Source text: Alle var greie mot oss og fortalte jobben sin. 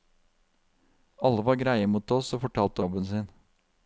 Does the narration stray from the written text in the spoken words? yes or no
no